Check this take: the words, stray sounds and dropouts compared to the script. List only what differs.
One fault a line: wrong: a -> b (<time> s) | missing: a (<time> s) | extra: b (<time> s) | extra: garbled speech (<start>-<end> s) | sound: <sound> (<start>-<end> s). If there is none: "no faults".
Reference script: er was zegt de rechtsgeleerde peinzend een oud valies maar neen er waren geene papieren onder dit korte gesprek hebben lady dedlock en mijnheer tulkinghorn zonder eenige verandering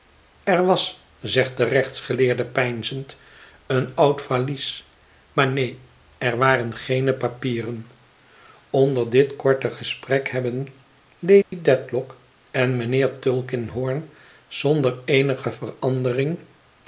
sound: dropout (11.4-11.5 s)